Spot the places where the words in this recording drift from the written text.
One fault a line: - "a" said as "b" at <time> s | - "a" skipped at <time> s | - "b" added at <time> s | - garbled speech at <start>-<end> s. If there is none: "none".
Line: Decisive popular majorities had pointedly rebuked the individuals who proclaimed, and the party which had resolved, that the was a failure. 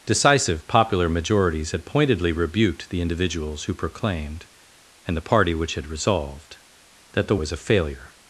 none